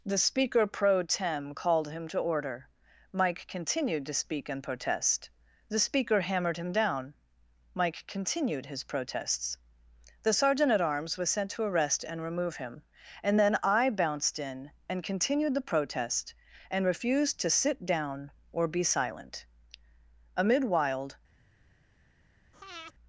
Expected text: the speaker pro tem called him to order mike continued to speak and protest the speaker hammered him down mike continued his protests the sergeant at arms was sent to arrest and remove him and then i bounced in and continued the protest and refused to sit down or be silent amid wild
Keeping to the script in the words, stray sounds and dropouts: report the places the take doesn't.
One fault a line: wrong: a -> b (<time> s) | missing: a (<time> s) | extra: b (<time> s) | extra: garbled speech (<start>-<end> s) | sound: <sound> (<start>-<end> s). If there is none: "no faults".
sound: breath (22.5-22.9 s)